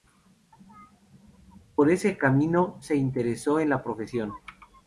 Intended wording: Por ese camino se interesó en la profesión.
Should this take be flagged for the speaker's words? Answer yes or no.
no